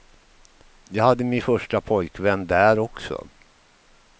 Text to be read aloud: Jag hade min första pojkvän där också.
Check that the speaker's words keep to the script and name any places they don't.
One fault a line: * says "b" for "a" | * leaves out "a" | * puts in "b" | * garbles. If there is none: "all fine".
all fine